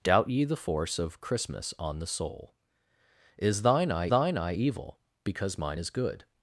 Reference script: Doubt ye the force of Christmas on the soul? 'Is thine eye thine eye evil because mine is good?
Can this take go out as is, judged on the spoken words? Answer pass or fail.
pass